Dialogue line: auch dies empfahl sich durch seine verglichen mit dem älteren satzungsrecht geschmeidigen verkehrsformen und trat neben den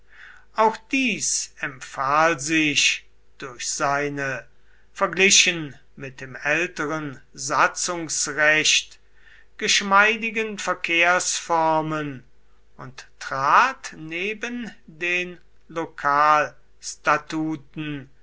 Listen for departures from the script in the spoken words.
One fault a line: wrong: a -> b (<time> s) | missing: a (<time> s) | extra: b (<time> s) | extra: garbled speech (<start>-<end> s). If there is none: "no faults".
no faults